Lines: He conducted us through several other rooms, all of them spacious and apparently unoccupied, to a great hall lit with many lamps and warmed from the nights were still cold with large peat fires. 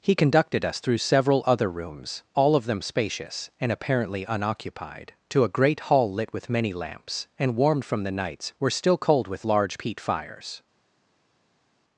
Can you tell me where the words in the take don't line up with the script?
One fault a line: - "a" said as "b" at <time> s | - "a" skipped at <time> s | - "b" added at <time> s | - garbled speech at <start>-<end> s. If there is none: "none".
none